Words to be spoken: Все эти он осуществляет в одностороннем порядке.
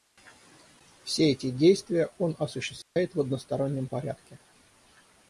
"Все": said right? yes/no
yes